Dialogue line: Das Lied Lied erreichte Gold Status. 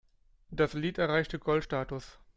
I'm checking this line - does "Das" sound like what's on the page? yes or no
yes